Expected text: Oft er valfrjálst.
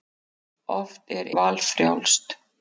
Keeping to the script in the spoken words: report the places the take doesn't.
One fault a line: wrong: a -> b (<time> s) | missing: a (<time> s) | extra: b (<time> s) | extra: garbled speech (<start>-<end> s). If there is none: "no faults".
no faults